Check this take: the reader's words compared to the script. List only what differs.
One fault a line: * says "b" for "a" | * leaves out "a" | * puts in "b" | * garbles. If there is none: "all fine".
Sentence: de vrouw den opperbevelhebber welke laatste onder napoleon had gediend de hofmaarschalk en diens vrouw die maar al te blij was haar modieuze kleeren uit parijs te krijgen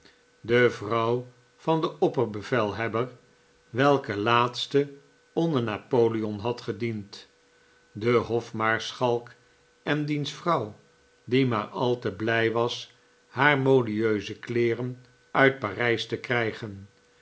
* puts in "van"